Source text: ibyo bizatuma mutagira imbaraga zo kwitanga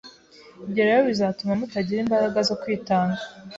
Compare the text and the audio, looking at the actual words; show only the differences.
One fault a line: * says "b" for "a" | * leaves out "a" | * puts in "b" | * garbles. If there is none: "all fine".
* puts in "rero"